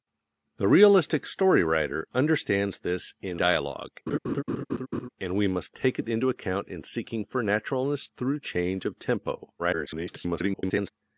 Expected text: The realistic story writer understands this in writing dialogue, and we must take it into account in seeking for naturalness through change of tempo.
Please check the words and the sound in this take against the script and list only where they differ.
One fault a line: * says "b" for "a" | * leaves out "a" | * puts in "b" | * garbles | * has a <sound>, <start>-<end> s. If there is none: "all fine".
* leaves out "writing"
* has a laugh, 4.1-5.1 s
* garbles